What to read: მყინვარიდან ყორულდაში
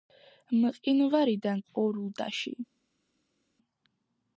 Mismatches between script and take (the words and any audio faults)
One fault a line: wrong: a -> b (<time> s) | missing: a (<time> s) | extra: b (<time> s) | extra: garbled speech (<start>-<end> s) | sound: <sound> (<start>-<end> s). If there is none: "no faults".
no faults